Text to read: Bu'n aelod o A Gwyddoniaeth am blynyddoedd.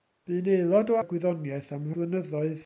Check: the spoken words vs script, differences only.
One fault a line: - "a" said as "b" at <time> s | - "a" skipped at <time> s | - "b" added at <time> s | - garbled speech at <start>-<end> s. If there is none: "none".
none